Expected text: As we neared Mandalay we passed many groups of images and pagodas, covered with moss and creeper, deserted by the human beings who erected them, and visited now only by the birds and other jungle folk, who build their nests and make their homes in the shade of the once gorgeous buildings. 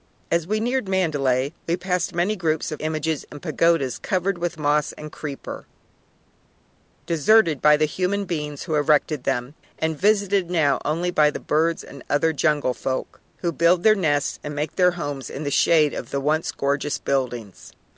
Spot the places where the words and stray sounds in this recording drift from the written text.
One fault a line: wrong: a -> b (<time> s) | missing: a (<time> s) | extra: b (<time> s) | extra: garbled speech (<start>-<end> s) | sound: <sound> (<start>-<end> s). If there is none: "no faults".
no faults